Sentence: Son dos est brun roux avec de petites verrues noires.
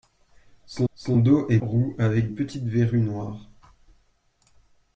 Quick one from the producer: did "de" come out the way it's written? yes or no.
no